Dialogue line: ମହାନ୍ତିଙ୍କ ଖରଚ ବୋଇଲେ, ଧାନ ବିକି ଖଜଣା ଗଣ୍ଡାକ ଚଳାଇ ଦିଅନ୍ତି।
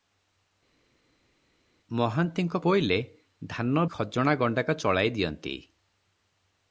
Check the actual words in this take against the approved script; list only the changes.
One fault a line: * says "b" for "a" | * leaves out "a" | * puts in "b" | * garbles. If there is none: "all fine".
* leaves out "ଖରଚ"
* leaves out "ବିକି"